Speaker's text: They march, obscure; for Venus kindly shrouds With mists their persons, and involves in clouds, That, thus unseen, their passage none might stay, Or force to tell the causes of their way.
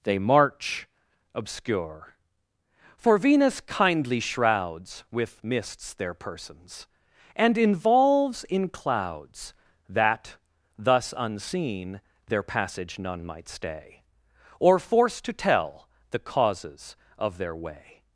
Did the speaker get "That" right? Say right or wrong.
right